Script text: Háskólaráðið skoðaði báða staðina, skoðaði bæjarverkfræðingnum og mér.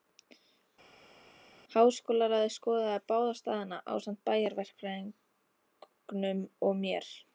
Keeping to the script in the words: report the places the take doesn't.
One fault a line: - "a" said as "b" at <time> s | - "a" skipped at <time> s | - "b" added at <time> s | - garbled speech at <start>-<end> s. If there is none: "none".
- "skoðaði" said as "ásamt" at 4.0 s